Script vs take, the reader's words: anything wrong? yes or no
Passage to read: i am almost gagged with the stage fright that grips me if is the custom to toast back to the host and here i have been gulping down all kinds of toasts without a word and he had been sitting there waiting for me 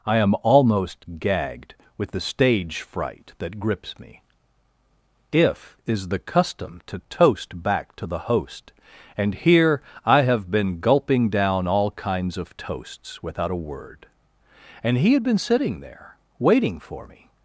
no